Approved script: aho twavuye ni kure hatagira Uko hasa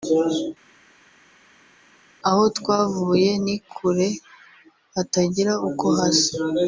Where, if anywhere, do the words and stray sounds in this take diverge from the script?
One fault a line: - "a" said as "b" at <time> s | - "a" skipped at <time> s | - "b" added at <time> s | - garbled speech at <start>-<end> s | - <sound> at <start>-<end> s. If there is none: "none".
none